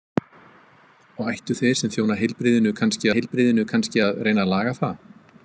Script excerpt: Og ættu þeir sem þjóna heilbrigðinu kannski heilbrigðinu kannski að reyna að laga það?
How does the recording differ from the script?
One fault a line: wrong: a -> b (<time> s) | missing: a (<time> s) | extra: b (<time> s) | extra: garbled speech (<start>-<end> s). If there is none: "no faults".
no faults